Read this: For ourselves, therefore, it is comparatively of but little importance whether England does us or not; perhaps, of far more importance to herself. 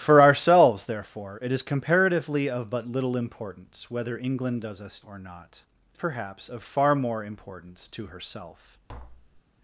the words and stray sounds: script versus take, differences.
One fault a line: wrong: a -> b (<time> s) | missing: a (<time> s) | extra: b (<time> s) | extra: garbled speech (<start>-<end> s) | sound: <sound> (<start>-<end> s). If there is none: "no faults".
sound: tap (8.9-9.4 s)